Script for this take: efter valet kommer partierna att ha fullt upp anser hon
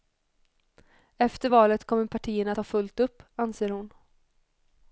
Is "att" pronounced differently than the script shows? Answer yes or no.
yes